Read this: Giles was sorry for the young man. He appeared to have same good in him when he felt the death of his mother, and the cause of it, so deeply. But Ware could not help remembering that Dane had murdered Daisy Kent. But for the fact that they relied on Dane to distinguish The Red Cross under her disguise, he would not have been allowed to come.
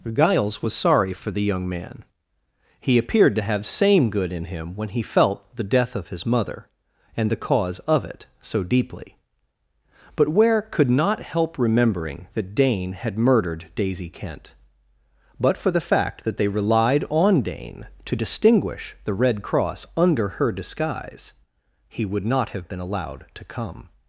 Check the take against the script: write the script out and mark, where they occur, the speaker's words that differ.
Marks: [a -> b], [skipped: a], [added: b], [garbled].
Giles was sorry for the young man. He appeared to have same good in him when he felt the death of his mother, and the cause of it, so deeply. But Ware could not help remembering that Dane had murdered Daisy Kent. But for the fact that they relied on Dane to distinguish The Red Cross under her disguise, he would not have been allowed to come.